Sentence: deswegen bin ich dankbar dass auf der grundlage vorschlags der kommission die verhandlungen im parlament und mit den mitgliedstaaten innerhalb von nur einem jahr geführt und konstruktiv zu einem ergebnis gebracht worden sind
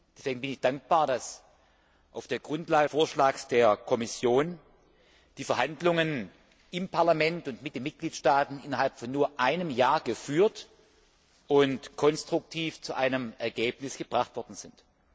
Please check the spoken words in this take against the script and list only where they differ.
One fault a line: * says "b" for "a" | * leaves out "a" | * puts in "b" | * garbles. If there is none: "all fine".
all fine